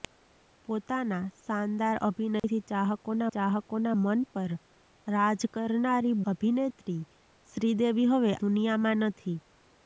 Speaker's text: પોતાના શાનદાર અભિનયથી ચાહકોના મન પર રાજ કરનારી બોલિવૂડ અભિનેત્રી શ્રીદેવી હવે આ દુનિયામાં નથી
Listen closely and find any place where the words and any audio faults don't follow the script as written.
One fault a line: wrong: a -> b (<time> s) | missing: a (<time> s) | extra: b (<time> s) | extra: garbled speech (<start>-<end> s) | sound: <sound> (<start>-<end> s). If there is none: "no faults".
sound: dropout (2.4-2.4 s)
extra: ચાહકોના (3.4 s)
missing: બોલિવૂડ (6.2 s)
missing: આ (8.4 s)